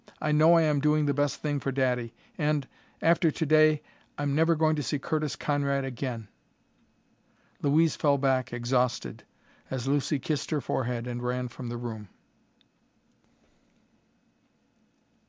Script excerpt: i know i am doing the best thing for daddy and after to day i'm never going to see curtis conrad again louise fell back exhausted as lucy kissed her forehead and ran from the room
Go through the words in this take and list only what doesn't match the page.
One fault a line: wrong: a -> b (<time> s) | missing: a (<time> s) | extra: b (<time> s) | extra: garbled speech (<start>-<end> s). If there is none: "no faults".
no faults